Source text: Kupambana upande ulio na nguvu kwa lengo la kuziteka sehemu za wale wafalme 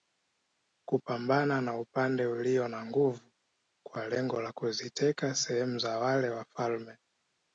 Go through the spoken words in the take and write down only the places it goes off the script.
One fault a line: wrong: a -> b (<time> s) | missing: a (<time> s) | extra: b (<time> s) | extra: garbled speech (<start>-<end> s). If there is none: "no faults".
extra: na (1.6 s)